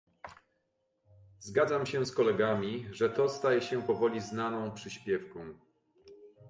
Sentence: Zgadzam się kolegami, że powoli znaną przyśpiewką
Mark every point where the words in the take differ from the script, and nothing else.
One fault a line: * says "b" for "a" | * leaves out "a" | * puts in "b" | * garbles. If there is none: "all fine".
* puts in "z"
* puts in "to staje się"